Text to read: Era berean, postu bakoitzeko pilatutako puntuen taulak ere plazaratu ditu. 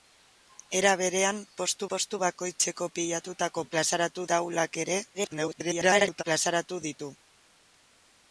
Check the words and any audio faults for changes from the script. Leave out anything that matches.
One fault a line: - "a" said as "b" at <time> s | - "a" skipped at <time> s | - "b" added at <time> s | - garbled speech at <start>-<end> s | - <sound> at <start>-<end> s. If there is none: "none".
- "postu" added at 1.9 s
- "puntuen" said as "plazaratu" at 3.7 s
- garbled speech at 5.1-6.2 s